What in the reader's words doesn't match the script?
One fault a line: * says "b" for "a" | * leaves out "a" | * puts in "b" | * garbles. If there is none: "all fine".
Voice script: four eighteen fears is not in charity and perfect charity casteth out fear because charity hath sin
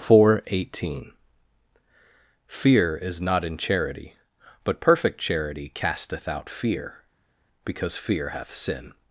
* says "fear" for "fears"
* says "but" for "and"
* says "fear" for "charity"